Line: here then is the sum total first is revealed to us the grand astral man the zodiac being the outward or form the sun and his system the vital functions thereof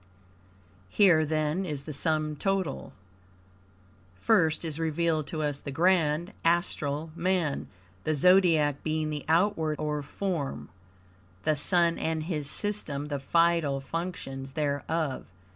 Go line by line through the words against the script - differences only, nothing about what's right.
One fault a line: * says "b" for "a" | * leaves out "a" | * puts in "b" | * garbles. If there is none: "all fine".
all fine